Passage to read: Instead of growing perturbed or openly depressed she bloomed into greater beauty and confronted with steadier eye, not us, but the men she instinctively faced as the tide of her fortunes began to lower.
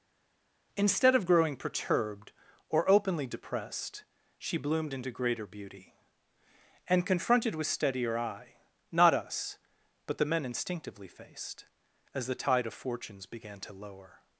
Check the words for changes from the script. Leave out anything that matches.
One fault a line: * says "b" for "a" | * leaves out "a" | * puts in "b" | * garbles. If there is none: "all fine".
* leaves out "she"
* leaves out "her"